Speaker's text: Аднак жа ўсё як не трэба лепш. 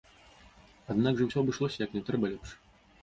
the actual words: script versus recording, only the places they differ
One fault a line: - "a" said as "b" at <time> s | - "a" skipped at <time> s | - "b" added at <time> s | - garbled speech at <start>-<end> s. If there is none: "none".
- "абышлося" added at 1.4 s